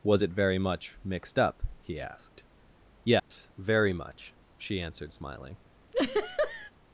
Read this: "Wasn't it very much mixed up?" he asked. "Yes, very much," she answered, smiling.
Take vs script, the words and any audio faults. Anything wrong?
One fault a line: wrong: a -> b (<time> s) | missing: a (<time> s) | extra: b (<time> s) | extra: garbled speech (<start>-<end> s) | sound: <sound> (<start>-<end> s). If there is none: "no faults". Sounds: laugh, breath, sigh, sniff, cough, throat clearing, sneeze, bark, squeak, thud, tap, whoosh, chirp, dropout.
wrong: Wasn't -> Was (0.0 s)
sound: dropout (3.2-3.3 s)
sound: laugh (5.9-6.7 s)